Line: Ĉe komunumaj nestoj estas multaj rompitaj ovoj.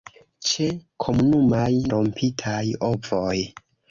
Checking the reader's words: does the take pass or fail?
fail